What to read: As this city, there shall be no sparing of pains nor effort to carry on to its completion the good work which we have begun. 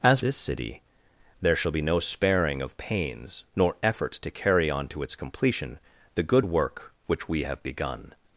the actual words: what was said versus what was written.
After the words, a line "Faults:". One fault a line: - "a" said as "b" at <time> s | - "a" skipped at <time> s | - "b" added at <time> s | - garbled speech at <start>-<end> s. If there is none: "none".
As this city, there shall be no sparing of pains nor effort to carry on to its completion the good work which we have begun.
Faults:
none